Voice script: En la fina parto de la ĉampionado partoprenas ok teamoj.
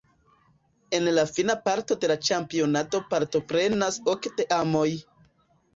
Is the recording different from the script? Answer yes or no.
no